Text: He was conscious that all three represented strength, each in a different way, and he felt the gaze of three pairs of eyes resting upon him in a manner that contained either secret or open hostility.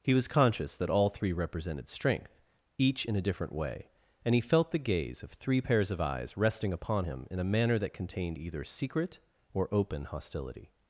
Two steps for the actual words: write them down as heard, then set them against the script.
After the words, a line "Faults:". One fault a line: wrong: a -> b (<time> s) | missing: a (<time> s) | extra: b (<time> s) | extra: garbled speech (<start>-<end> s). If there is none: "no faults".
He was conscious that all three represented strength, each in a different way, and he felt the gaze of three pairs of eyes resting upon him in a manner that contained either secret or open hostility.
Faults:
no faults